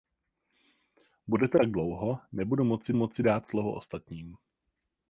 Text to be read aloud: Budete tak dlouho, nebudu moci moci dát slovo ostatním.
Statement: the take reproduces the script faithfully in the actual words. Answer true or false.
true